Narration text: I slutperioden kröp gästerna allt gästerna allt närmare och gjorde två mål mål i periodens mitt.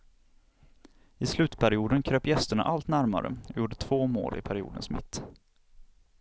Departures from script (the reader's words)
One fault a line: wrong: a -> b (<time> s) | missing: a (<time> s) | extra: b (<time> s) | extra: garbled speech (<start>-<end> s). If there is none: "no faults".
missing: gästerna allt (2.9 s)
missing: mål (4.4 s)